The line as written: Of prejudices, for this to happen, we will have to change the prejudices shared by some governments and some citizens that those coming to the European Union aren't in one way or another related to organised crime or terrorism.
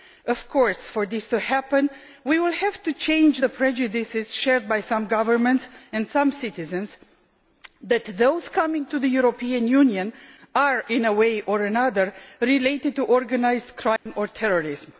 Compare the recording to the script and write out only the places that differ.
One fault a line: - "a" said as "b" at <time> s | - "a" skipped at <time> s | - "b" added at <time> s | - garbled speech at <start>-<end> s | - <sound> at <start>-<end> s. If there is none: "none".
- "prejudices" said as "course" at 0.5 s
- "aren't" said as "are" at 10.6 s
- dropout at 14.0-14.1 s